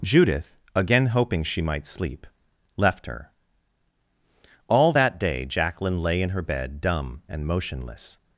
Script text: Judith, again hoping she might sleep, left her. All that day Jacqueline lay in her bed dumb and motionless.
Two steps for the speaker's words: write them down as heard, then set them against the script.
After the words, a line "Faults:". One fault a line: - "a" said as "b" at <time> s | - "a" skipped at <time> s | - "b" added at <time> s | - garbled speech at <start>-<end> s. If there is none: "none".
Judith, again hoping she might sleep, left her. All that day Jacqueline lay in her bed dumb and motionless.
Faults:
none